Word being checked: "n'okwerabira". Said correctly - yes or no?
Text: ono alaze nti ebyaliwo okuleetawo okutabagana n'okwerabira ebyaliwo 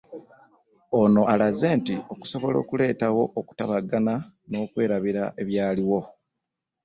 yes